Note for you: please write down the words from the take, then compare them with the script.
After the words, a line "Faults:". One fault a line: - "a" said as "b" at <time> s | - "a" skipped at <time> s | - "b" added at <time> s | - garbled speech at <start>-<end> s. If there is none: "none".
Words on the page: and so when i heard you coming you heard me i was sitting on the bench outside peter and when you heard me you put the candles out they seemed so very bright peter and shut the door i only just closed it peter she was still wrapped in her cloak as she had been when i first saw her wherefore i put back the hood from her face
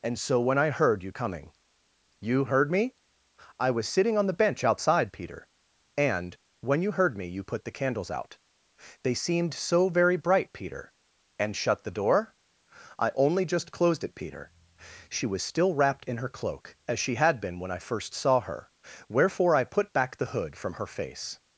and so when i heard you coming you heard me i was sitting on the bench outside peter and when you heard me you put the candles out they seemed so very bright peter and shut the door i only just closed it peter she was still wrapped in her cloak as she had been when i first saw her wherefore i put back the hood from her face
Faults:
none